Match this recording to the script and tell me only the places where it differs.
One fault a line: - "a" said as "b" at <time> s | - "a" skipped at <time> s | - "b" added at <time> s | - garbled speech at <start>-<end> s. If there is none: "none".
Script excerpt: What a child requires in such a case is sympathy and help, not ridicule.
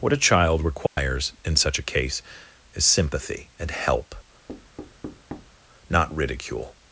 none